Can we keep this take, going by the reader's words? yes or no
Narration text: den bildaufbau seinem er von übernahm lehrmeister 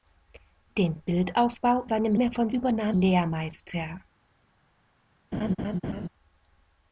yes